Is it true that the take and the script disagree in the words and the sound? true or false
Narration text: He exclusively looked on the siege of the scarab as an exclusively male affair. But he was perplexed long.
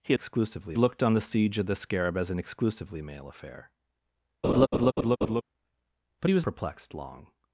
true